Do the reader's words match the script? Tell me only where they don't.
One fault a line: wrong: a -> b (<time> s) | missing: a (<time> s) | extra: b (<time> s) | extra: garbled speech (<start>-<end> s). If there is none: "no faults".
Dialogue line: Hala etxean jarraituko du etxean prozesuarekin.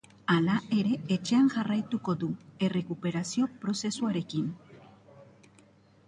extra: ere (0.8 s)
wrong: etxean -> errekuperazio (2.7 s)